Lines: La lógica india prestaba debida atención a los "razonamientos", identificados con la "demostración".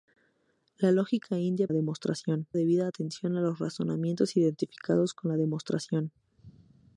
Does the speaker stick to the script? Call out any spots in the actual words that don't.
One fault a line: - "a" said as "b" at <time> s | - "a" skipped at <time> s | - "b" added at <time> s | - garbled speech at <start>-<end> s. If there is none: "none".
- "prestaba" said as "demostración" at 1.7 s